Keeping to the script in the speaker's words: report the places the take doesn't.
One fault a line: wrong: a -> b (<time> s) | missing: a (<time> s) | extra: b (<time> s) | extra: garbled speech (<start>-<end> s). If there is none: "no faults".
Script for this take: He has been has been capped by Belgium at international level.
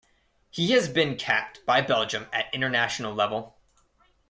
missing: has been (1.2 s)